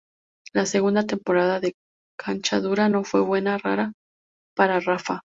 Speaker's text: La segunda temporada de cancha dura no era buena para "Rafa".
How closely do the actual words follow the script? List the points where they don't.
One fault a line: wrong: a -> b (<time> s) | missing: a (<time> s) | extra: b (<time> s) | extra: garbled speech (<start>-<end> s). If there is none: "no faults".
wrong: era -> fue (3.0 s)